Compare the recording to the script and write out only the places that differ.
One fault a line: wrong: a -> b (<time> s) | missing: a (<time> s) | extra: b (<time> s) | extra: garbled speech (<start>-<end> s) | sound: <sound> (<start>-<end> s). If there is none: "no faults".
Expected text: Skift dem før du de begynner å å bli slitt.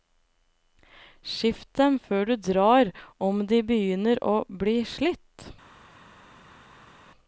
extra: drar om (2.5 s)
missing: å (4.4 s)